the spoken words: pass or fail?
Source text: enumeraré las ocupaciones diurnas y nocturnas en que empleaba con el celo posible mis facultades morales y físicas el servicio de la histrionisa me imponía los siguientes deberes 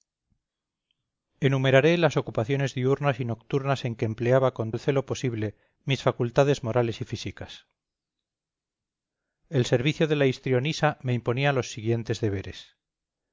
pass